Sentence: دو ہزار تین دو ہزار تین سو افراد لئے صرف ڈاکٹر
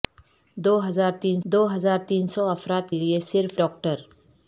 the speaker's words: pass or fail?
pass